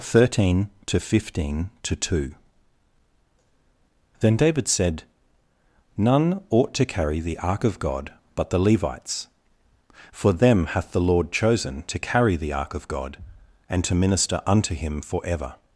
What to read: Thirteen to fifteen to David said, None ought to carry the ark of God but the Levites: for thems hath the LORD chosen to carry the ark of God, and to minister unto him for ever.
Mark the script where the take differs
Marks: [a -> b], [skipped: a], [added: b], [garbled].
Thirteen to fifteen to [added: two Then] David said, None ought to carry the ark of God but the Levites: for [thems -> them] hath the LORD chosen to carry the ark of God, and to minister unto him for ever.